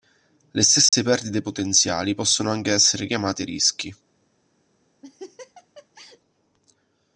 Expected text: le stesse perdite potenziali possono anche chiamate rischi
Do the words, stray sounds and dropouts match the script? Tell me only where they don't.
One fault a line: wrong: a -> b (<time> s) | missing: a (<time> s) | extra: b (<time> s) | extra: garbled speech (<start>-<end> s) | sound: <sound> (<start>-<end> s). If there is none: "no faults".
sound: dropout (0.9-0.9 s)
extra: essere (2.7 s)
sound: laugh (5.0-6.2 s)